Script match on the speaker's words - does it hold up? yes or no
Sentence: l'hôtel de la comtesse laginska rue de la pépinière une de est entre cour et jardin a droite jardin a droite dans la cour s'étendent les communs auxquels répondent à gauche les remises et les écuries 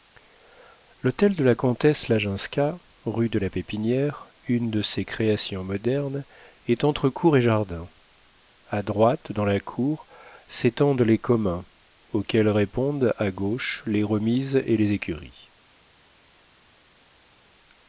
no